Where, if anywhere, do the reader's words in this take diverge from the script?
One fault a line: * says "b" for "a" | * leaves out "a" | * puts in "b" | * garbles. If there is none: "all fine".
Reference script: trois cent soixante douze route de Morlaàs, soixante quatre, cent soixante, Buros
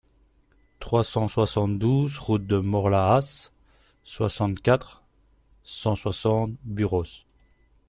all fine